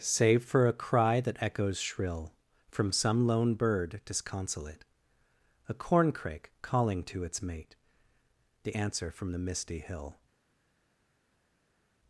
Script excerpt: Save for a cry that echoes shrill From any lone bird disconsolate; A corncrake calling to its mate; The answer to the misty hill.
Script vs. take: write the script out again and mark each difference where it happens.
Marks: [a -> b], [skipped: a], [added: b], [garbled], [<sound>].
Save for a cry that echoes shrill From [any -> some] lone bird disconsolate; A corncrake calling to its mate; The answer [to -> from] the misty hill.